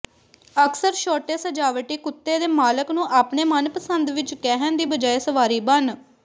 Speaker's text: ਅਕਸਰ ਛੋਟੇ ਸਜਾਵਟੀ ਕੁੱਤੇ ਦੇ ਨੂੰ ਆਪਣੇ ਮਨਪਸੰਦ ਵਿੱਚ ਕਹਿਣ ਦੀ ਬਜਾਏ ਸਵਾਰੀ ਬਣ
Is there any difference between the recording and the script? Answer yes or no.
yes